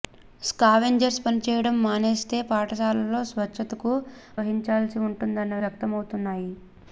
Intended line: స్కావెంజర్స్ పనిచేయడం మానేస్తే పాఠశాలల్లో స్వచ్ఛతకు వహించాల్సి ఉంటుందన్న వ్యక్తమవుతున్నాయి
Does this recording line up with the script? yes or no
yes